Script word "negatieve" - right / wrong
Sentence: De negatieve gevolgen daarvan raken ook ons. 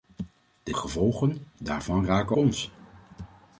wrong